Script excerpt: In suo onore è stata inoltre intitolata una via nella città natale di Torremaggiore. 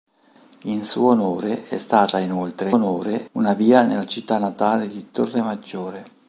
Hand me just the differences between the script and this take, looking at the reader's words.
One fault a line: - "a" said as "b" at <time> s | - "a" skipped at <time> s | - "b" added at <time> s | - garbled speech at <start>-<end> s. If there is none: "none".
- "intitolata" said as "onore" at 2.7 s